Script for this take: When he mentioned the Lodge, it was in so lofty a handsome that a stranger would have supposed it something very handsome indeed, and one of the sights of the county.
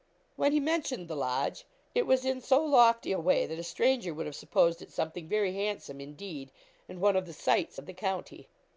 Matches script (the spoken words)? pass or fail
fail